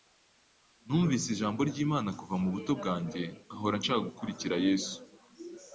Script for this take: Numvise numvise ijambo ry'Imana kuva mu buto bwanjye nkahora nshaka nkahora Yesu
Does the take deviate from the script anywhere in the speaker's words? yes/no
yes